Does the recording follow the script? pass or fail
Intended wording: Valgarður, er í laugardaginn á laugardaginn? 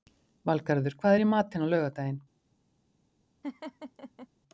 fail